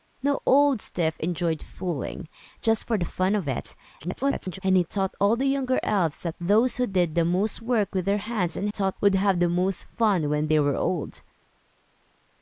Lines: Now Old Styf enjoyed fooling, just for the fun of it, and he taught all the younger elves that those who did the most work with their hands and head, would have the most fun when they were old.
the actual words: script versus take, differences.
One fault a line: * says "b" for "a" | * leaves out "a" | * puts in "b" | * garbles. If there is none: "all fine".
* garbles
* says "taught" for "head"